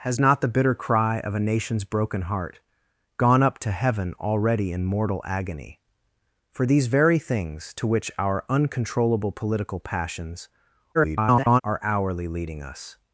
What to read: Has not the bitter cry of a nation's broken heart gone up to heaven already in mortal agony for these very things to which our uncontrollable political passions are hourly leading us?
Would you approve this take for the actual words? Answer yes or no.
no